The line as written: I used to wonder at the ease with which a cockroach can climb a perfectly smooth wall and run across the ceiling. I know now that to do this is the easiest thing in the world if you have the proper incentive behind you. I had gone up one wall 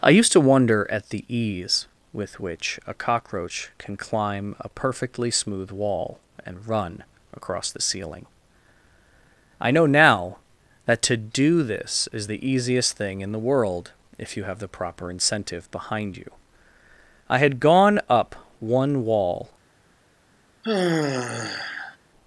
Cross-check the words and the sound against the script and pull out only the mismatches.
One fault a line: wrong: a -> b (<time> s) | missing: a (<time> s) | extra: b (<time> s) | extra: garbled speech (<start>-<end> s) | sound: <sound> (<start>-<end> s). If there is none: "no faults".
sound: sigh (20.6-22.0 s)